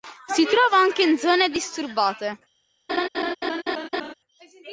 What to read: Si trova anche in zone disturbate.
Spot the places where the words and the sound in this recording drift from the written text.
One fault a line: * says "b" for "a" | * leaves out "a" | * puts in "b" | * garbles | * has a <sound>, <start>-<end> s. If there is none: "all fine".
* has a laugh, 2.9-4.1 s